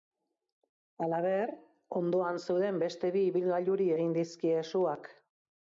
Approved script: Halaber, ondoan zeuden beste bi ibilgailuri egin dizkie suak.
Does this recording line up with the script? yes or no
yes